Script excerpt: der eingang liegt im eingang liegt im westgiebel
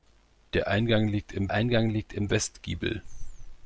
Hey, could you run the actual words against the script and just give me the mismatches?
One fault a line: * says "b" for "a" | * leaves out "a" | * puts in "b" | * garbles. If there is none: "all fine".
all fine